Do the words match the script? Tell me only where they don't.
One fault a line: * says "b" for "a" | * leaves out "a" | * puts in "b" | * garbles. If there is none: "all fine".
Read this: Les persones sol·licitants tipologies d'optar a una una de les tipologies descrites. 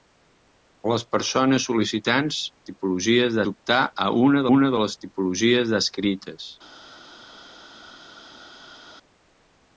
all fine